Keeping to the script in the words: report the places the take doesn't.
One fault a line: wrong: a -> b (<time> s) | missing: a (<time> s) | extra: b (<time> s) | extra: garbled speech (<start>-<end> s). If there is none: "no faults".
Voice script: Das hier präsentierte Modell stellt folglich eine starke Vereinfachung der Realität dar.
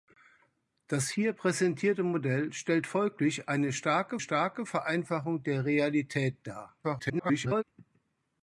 extra: starke (4.2 s)
extra: garbled speech (6.8-7.6 s)